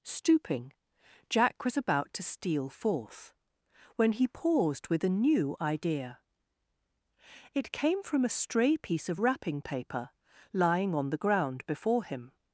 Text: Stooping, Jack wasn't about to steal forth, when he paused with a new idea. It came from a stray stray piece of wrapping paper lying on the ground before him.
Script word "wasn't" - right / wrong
wrong